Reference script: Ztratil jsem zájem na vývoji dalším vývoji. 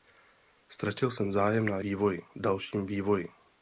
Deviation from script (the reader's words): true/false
false